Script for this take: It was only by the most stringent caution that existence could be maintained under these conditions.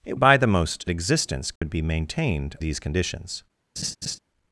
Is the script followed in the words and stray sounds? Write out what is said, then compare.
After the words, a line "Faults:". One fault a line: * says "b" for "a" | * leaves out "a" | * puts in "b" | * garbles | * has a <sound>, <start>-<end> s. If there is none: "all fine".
It by the most existence could be maintained these conditions.
Faults:
* leaves out "was only"
* leaves out "stringent caution that"
* has a dropout, 1.6-1.6 s
* leaves out "under"
* has a laugh, 3.8-4.2 s